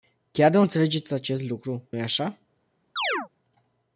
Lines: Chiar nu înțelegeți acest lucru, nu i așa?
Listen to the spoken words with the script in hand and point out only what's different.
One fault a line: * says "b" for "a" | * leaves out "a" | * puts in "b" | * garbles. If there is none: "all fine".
* leaves out "nu"